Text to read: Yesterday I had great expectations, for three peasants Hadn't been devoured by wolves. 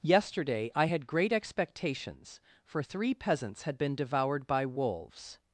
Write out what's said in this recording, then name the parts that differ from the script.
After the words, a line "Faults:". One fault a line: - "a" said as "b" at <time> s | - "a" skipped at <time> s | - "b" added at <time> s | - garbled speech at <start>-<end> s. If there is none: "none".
Yesterday I had great expectations, for three peasants Had been devoured by wolves.
Faults:
- "Hadn't" said as "Had" at 3.6 s